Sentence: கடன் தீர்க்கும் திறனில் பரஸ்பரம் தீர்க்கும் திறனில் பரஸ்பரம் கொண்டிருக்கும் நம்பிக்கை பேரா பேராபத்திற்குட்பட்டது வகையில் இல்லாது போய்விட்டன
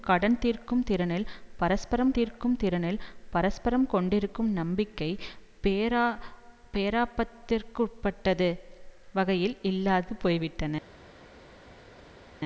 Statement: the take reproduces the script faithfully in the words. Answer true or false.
true